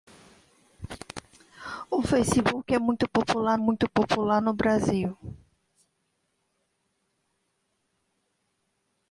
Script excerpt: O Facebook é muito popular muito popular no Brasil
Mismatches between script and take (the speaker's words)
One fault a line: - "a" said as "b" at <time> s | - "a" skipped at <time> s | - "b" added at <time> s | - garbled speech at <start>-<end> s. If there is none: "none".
none